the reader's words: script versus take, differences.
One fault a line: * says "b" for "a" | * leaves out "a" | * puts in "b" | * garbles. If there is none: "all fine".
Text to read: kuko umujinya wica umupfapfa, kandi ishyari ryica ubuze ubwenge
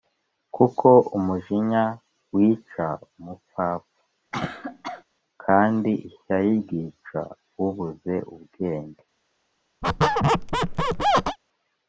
all fine